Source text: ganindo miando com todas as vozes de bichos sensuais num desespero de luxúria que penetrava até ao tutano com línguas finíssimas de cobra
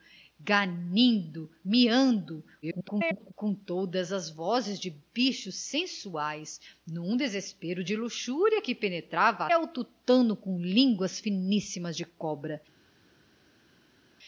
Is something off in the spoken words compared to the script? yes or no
yes